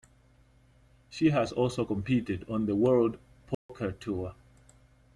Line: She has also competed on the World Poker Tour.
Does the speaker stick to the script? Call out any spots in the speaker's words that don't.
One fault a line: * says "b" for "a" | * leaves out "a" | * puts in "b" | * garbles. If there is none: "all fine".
all fine